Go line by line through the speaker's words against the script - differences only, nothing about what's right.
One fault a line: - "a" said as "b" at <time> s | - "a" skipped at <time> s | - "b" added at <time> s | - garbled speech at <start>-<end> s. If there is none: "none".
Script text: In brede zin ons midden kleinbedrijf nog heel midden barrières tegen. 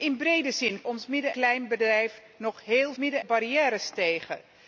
none